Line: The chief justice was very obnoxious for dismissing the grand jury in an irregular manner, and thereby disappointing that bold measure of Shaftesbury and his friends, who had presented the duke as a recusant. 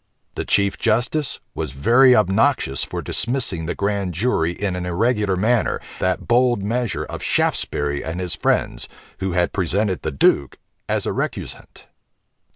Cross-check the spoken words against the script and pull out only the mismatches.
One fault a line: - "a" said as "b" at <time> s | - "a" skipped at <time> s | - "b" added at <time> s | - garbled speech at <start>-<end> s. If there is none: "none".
- "and thereby disappointing" skipped at 5.8 s